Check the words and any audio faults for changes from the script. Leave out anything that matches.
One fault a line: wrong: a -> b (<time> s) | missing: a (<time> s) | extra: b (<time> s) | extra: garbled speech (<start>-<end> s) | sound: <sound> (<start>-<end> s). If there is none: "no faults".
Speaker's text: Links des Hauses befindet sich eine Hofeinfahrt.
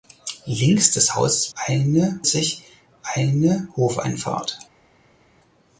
wrong: befindet -> eine (1.5 s)